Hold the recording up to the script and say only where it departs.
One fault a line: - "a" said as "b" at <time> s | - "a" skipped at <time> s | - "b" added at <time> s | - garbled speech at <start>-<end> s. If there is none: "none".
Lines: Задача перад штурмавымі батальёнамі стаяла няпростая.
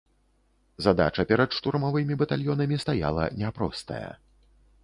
none